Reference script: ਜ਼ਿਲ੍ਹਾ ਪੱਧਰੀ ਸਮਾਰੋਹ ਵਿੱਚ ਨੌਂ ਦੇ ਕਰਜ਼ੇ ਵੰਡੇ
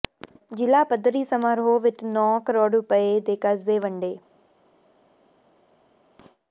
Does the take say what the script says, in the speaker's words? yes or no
no